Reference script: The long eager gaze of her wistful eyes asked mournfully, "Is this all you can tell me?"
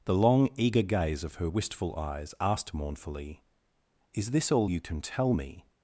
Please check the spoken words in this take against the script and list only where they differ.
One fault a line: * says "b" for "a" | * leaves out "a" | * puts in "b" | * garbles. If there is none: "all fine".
all fine